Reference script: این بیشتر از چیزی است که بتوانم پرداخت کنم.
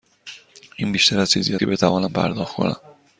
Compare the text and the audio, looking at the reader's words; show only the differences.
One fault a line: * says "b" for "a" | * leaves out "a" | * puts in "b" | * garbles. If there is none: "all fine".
* leaves out "است"